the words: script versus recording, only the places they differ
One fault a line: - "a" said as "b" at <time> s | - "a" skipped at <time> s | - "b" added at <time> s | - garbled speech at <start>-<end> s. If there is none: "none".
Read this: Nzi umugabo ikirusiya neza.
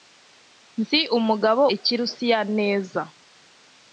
none